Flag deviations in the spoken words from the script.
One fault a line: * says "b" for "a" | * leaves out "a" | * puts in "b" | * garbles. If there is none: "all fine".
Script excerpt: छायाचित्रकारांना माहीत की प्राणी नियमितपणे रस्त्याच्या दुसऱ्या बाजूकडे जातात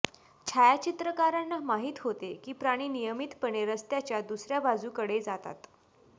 * puts in "होते"